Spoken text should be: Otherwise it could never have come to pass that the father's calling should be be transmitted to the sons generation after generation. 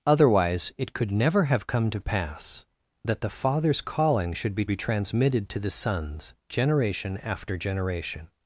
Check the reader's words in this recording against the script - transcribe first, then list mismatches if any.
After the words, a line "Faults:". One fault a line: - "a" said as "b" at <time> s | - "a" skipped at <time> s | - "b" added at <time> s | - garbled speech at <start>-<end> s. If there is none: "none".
Otherwise it could never have come to pass that the father's calling should be be transmitted to the sons generation after generation.
Faults:
none